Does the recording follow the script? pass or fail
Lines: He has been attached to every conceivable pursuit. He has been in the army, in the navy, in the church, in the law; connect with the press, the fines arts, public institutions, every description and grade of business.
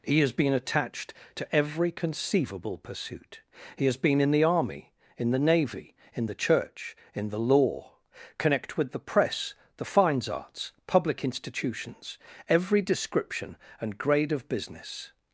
pass